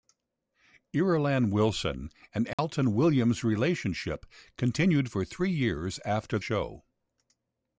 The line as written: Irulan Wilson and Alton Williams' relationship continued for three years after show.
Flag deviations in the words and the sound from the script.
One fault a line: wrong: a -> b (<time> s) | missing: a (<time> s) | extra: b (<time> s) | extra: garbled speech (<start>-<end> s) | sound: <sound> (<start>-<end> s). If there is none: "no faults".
sound: dropout (2.5-2.6 s)